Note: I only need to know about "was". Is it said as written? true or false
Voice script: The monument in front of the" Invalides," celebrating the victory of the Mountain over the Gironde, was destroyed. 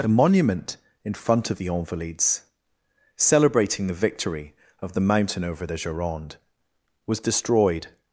true